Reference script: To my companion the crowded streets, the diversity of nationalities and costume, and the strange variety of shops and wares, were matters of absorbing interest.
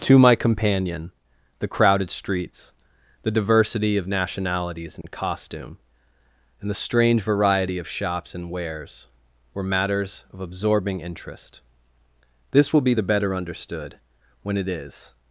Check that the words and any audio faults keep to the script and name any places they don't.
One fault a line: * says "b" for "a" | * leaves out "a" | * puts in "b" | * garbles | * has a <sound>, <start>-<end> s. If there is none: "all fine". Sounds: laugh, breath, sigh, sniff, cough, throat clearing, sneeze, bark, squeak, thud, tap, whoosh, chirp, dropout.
* has a dropout, 5.0-5.0 s
* puts in "This will be the better understood when it is"